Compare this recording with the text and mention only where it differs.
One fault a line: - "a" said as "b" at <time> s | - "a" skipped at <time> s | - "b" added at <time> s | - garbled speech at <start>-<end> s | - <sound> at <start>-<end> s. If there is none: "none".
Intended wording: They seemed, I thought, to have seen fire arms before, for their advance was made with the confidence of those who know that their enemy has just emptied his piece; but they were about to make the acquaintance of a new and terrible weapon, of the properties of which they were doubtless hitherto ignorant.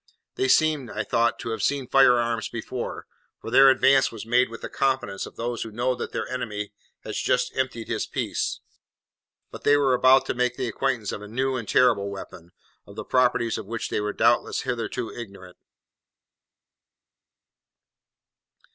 none